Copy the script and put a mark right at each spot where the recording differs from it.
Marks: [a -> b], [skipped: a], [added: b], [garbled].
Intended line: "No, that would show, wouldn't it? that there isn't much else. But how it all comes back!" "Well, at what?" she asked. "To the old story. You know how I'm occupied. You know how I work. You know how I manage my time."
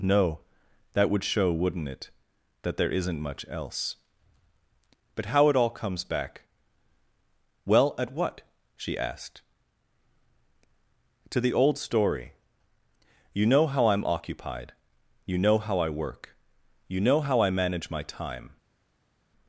"No, that would show, wouldn't it? that there isn't much else. But how it all comes back!" "Well, at what?" she asked. "To the old story. You know how I'm occupied. You know how I work. You know how I manage my time."